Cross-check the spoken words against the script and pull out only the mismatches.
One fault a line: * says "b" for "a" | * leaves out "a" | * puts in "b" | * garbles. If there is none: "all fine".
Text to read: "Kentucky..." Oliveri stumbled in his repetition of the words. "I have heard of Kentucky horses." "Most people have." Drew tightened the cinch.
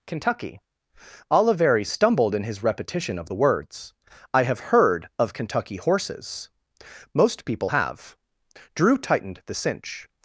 all fine